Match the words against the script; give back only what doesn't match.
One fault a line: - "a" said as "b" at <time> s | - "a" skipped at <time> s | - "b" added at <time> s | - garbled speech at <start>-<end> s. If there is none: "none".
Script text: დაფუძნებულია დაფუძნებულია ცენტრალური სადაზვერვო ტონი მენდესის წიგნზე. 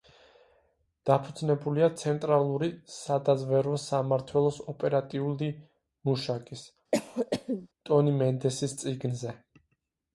- "დაფუძნებულია" skipped at 1.9 s
- "სამმართველოს ოპერატიული მუშაკის" added at 3.9 s